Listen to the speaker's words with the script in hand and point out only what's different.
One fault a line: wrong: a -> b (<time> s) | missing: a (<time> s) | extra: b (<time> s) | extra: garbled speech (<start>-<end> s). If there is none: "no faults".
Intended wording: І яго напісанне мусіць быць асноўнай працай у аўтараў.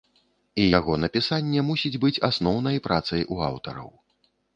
no faults